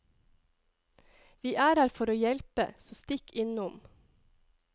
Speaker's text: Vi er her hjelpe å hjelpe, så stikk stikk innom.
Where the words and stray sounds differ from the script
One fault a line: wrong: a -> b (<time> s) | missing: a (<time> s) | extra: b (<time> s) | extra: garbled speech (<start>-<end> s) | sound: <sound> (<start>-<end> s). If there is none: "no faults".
wrong: hjelpe -> for (1.9 s)
missing: stikk (3.3 s)